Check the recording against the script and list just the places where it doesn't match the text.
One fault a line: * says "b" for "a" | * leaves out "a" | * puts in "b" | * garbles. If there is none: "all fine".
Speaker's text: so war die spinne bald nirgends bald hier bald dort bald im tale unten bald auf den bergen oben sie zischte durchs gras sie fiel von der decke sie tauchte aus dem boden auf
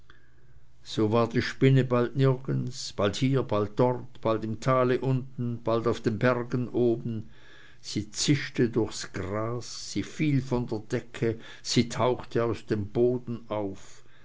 all fine